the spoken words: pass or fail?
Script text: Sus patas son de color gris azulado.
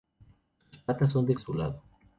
fail